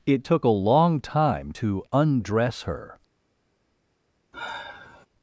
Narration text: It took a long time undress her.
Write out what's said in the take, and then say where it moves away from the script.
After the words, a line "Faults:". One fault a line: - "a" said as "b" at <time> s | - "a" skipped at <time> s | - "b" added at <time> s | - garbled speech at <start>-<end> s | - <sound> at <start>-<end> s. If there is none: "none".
It took a long time to undress her.
Faults:
- "to" added at 1.5 s
- sigh at 4.3-5.1 s